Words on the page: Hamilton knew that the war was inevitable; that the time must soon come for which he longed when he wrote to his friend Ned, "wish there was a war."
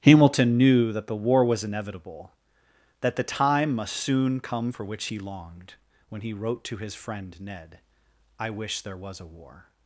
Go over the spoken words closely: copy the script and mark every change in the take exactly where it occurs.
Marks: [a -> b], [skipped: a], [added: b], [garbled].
Hamilton knew that the war was inevitable; that the time must soon come for which he longed when he wrote to his friend Ned, [added: I] "wish there was a war."